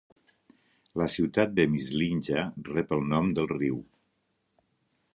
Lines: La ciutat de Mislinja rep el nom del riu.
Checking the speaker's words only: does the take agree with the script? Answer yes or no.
yes